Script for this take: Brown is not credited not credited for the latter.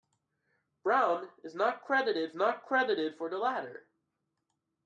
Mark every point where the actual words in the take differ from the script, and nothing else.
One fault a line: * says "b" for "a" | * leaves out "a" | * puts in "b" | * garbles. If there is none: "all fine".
all fine